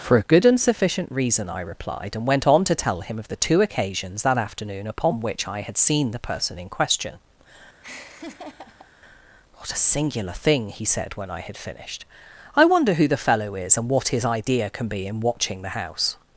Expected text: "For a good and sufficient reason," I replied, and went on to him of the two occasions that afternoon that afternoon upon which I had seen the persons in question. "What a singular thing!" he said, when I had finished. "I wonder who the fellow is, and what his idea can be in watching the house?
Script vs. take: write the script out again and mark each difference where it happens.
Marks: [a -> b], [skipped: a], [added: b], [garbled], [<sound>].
"For a good and sufficient reason," I replied, and went on to [added: tell] him of the two occasions that afternoon [skipped: that afternoon] upon which I had seen the [persons -> person] in question. [laugh] "What a singular thing!" he said, when I had finished. "I wonder who the fellow is, and what his idea can be in watching the house?